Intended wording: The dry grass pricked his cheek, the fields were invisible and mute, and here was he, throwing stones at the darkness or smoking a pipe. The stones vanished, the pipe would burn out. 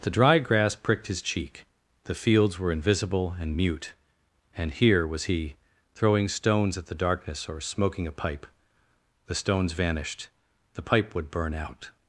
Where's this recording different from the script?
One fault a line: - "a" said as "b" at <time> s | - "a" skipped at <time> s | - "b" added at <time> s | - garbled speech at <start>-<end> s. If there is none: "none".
none